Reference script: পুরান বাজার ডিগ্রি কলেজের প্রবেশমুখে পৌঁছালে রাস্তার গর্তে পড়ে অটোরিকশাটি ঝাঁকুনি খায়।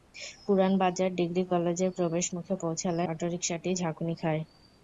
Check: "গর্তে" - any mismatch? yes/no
yes